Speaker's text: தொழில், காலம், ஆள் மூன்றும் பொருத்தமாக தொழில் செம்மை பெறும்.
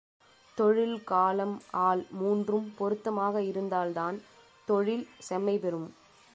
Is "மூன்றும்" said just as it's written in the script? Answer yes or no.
yes